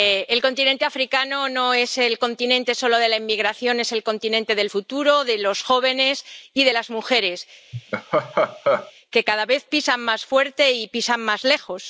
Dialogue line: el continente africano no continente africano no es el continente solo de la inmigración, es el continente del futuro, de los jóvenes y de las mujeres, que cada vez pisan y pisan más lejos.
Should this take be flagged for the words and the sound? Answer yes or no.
yes